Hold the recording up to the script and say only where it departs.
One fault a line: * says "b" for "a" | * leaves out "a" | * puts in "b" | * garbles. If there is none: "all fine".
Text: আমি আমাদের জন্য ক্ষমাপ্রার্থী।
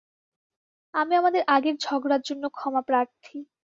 * puts in "আগের ঝগড়ার"